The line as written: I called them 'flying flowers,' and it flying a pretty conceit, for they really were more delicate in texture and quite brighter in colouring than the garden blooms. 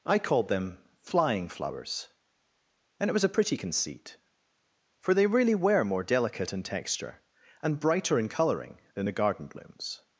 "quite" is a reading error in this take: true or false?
true